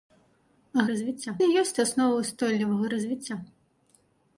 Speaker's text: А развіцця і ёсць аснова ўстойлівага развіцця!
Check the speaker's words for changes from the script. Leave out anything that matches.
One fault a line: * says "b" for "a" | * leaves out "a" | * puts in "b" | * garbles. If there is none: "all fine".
all fine